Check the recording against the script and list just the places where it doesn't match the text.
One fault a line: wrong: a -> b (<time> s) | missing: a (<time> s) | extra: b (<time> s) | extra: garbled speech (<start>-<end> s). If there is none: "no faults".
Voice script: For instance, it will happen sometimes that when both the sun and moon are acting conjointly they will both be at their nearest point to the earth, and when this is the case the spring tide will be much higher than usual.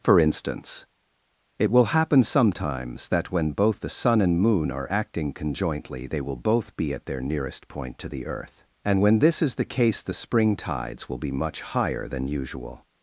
wrong: tide -> tides (10.5 s)